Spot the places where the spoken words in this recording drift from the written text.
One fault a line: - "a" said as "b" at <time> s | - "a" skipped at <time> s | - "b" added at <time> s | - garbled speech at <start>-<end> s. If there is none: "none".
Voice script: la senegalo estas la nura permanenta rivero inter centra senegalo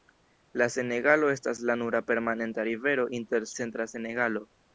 none